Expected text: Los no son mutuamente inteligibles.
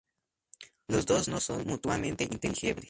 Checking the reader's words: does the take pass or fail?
fail